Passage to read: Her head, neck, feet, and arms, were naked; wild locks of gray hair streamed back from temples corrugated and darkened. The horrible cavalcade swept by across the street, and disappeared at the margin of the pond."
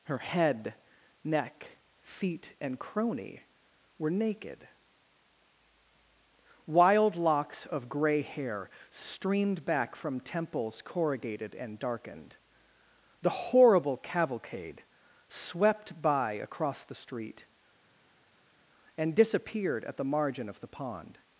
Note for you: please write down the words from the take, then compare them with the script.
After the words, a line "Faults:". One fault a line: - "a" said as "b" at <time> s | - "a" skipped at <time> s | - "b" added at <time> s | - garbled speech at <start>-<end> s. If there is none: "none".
Her head, neck, feet, and crony, were naked; wild locks of gray hair streamed back from temples corrugated and darkened. The horrible cavalcade swept by across the street, and disappeared at the margin of the pond."
Faults:
- "arms" said as "crony" at 2.8 s